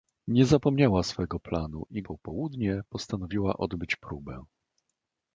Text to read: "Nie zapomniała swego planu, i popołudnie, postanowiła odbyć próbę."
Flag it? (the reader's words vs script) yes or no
no